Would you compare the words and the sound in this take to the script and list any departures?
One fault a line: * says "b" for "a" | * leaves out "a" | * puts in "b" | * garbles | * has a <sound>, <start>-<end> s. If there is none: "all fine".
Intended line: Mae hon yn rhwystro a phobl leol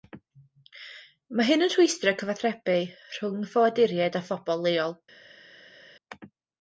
* says "hyn" for "hon"
* puts in "cyfathrebu rhwng ffoaduriaid"